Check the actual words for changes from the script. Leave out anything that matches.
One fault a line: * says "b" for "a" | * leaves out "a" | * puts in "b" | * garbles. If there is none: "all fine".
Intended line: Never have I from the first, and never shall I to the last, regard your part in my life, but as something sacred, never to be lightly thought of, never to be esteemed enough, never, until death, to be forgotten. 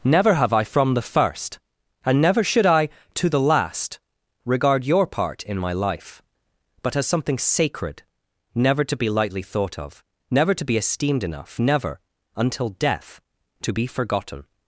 * says "should" for "shall"